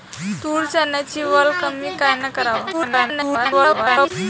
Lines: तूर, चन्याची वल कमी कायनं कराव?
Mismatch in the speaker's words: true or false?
true